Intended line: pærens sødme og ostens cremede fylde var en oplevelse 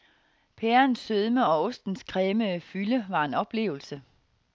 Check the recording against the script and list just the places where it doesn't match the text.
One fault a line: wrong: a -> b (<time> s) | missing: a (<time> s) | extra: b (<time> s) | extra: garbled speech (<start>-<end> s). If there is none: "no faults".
no faults